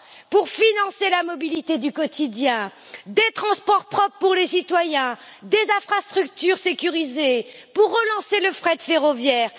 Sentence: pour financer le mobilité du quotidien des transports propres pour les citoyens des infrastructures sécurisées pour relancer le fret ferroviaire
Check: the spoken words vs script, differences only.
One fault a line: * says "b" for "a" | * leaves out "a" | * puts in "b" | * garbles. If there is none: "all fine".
* says "la" for "le"